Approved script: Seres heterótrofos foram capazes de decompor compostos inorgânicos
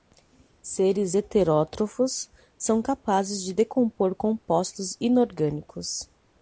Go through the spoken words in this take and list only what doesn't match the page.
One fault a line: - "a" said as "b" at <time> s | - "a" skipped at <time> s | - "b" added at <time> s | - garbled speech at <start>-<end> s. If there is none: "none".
- "foram" said as "são" at 2.6 s